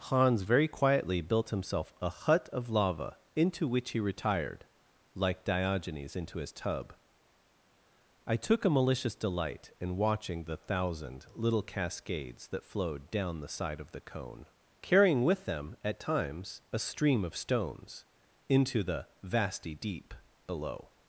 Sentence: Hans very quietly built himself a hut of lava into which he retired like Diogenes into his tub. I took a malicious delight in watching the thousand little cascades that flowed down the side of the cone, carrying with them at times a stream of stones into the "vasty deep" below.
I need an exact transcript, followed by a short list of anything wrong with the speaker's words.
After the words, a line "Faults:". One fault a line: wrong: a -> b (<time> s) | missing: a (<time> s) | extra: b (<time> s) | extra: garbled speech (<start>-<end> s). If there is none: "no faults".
Hans very quietly built himself a hut of lava into which he retired like Diogenes into his tub. I took a malicious delight in watching the thousand little cascades that flowed down the side of the cone, carrying with them at times a stream of stones into the "vasty deep" below.
Faults:
no faults